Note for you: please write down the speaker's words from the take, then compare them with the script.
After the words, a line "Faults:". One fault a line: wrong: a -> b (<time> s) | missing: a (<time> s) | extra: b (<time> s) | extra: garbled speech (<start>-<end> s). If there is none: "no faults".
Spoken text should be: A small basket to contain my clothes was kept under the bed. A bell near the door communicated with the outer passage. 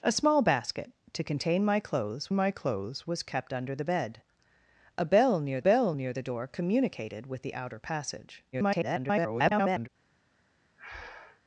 A small basket to contain my clothes my clothes was kept under the bed. A bell near bell near the door communicated with the outer passage. [garbled]
Faults:
extra: my clothes (2.3 s)
extra: bell near (5.6 s)
extra: garbled speech (8.5-9.9 s)